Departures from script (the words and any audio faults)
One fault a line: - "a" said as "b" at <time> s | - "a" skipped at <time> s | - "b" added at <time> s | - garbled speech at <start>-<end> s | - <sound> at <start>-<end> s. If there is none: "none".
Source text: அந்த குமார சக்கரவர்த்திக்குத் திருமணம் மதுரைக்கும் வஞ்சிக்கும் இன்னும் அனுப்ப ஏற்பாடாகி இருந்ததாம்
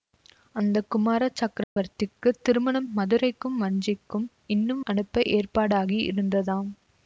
- dropout at 1.6-1.8 s